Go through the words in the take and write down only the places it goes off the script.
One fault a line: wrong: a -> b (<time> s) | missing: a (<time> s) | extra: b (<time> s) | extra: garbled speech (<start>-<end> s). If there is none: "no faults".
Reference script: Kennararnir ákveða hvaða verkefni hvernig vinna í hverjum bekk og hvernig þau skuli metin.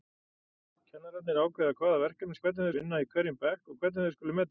no faults